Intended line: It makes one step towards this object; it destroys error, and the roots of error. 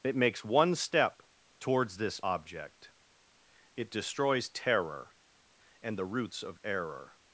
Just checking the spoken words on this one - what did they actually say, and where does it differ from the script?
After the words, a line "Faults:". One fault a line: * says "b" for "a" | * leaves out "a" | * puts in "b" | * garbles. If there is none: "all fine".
It makes one step towards this object; it destroys terror, and the roots of error.
Faults:
* says "terror" for "error"